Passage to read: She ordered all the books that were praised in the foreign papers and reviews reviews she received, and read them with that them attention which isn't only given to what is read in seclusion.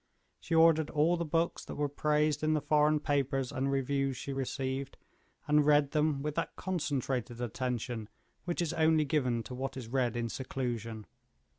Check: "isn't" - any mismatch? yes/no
yes